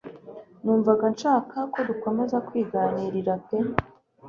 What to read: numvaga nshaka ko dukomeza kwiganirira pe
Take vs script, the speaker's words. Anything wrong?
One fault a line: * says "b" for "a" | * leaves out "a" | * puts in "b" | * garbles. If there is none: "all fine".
all fine